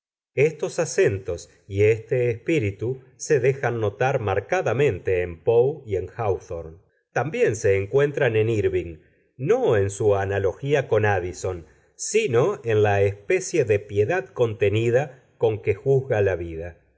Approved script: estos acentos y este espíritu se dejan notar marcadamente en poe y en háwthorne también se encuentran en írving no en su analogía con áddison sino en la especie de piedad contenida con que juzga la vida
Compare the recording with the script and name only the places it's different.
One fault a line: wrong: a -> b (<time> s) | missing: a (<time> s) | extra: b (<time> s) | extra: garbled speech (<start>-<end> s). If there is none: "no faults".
no faults